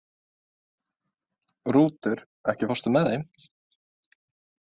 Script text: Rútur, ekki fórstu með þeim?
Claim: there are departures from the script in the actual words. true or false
false